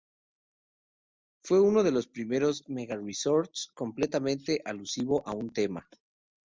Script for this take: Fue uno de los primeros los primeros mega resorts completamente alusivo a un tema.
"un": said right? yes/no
yes